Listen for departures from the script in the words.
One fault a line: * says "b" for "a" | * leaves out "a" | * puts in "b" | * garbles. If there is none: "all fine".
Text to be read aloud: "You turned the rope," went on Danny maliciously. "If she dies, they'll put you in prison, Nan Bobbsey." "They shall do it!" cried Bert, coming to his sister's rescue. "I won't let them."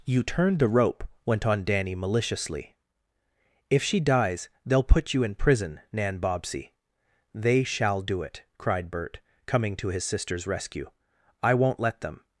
all fine